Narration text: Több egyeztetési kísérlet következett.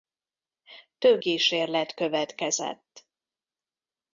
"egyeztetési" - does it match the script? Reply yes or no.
no